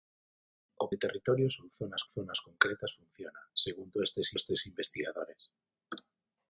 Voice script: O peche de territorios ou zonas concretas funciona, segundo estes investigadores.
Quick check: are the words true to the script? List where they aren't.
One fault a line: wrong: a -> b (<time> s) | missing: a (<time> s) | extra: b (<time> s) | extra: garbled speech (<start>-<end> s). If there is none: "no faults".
missing: peche (0.8 s)
extra: zonas (2.1 s)
extra: estes (4.4 s)